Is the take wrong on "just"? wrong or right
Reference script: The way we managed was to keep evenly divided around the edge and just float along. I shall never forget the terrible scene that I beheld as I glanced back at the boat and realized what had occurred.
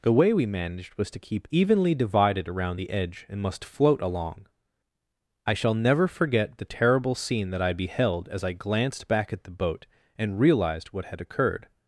wrong